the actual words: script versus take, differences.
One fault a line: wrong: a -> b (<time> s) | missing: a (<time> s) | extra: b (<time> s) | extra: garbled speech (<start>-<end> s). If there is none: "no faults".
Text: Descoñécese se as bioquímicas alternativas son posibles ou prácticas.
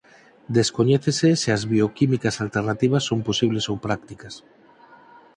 no faults